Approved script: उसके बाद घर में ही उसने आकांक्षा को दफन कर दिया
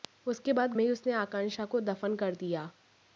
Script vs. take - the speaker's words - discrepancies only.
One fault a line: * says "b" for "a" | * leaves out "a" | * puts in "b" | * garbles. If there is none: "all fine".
* leaves out "घर"